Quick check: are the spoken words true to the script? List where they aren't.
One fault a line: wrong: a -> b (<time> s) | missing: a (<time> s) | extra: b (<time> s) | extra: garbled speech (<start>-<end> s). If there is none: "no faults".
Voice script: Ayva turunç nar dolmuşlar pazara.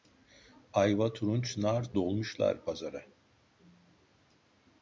no faults